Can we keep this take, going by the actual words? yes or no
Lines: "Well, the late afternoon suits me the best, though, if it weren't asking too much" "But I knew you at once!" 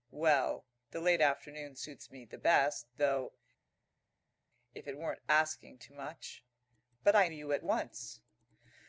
no